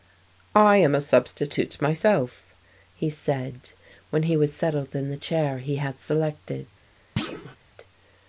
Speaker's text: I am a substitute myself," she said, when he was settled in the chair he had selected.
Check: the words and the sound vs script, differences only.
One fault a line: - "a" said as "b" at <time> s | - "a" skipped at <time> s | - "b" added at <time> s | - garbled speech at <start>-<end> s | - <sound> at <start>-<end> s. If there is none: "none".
- "she" said as "he" at 2.9 s
- thud at 7.2-7.6 s